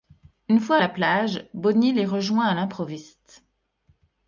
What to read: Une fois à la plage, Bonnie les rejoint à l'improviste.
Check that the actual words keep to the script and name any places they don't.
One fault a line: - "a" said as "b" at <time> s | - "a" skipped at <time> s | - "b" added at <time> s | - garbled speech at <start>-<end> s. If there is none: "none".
none